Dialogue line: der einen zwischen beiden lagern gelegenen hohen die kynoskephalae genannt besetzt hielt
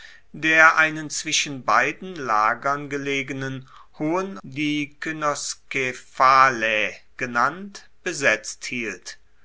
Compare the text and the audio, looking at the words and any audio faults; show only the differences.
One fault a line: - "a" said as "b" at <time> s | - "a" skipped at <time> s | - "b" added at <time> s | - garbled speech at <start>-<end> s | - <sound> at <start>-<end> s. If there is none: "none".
none